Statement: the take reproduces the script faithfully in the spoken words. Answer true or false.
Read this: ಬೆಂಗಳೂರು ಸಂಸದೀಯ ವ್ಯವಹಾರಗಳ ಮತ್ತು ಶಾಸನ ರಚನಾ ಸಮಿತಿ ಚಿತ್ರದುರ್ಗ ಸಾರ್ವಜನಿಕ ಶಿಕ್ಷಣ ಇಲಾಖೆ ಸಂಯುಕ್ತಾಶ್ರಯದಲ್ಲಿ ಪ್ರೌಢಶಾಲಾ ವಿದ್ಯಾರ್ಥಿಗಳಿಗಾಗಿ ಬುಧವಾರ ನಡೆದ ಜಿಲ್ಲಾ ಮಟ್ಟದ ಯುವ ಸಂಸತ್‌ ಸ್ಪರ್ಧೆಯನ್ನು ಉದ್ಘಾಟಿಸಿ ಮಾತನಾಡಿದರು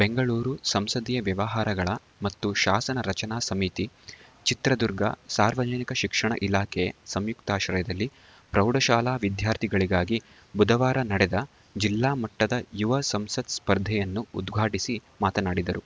true